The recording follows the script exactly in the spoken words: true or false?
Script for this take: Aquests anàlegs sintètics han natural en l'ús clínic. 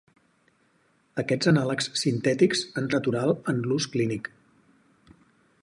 true